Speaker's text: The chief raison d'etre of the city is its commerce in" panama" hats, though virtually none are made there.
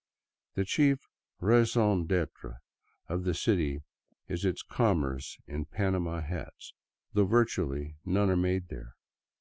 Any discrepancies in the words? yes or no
no